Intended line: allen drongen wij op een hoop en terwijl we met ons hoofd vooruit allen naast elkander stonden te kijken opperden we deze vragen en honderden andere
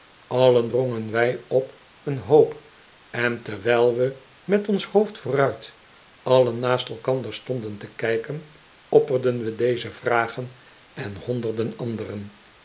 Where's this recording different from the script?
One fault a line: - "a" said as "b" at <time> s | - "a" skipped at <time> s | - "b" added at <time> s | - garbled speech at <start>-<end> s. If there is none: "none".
none